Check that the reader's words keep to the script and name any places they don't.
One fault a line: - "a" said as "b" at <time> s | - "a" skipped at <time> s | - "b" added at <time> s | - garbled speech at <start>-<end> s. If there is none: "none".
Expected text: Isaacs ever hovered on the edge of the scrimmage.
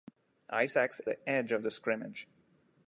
- "ever hovered on" skipped at 1.0 s